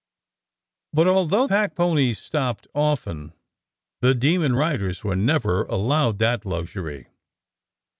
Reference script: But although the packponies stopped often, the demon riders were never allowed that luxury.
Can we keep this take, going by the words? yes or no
no